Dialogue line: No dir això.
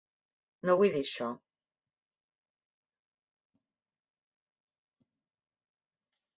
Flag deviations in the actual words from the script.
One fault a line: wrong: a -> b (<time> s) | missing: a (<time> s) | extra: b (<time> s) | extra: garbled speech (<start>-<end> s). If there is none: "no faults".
extra: vull (0.8 s)